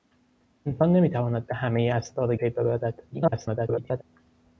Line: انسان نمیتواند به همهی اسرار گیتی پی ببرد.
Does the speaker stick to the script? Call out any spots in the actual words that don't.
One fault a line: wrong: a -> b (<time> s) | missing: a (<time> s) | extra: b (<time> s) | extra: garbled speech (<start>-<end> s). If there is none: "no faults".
missing: گیتی (2.3 s)
extra: garbled speech (3.1-4.0 s)